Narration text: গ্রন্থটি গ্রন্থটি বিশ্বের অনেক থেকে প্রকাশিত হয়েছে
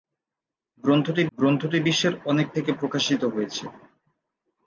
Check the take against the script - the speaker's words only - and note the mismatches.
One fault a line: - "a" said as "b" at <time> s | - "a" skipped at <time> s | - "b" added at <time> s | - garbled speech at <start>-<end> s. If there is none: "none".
none